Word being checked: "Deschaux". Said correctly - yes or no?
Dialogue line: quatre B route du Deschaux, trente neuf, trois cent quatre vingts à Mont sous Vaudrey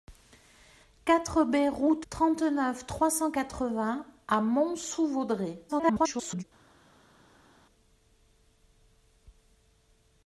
no